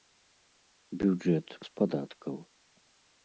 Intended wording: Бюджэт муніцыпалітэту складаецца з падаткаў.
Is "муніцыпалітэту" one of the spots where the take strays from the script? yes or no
yes